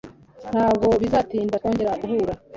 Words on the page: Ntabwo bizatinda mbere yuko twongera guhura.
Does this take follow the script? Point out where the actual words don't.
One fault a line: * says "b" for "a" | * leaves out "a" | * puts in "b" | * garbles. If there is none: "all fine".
* leaves out "mbere yuko"